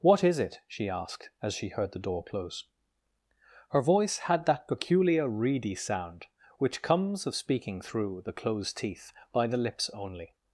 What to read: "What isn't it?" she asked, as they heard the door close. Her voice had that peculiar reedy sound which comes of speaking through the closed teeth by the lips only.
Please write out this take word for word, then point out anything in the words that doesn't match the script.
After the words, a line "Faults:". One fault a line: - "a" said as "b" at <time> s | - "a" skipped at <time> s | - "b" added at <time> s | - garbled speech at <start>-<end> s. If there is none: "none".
"What is it?" she asked, as she heard the door close. Her voice had that peculiar reedy sound which comes of speaking through the closed teeth by the lips only.
Faults:
- "isn't" said as "is" at 0.2 s
- "they" said as "she" at 1.5 s